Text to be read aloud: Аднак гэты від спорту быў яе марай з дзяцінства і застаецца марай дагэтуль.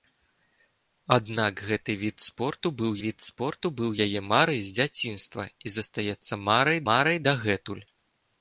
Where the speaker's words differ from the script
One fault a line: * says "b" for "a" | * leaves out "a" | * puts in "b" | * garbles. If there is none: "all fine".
* puts in "від спорту быў"
* puts in "марай"